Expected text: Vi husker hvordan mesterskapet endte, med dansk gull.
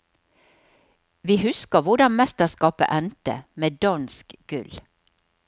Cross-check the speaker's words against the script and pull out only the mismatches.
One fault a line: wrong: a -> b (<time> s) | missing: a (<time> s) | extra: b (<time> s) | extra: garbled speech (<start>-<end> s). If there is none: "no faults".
no faults